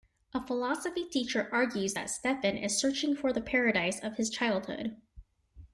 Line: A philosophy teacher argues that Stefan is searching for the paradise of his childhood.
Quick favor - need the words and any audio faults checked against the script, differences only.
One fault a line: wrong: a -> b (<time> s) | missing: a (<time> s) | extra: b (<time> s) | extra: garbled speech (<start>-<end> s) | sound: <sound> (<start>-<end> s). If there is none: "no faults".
no faults